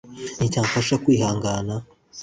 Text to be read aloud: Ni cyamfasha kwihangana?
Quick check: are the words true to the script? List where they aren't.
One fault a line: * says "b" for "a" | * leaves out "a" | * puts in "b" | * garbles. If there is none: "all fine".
all fine